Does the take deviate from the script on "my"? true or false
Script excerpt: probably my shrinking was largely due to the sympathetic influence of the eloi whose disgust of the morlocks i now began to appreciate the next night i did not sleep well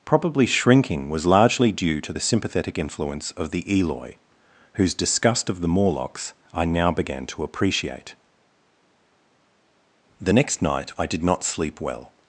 true